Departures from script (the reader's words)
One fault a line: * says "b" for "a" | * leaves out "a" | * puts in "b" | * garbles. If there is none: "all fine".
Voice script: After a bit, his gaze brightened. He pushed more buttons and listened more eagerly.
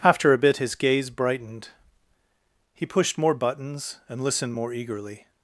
all fine